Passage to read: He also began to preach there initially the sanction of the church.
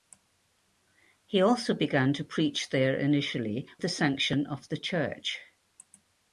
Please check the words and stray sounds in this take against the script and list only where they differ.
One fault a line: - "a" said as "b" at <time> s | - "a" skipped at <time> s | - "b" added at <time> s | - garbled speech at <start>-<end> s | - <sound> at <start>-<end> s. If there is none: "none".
none